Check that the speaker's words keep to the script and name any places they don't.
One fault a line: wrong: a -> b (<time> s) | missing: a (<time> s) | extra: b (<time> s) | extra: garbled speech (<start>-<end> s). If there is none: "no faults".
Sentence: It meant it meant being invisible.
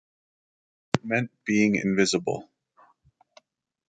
missing: it meant (1.3 s)